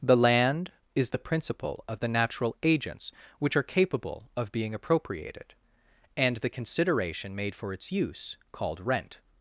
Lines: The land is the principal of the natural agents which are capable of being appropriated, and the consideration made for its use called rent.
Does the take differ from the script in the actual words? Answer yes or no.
no